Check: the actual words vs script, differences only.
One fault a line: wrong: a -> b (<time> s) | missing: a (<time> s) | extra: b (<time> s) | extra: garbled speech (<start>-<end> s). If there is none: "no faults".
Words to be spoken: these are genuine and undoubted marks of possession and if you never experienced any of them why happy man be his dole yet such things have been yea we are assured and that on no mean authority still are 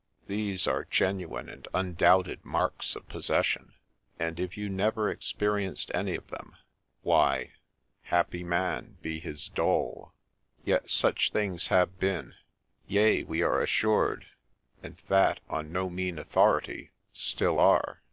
no faults